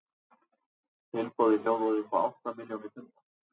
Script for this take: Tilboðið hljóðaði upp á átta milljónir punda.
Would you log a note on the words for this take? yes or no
no